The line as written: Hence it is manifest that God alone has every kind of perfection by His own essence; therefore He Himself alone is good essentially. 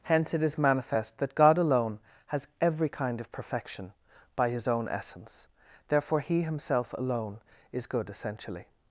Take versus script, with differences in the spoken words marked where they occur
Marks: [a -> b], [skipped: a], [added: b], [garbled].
Hence it is manifest that God alone has every kind of perfection by His own essence; therefore He Himself alone is good essentially.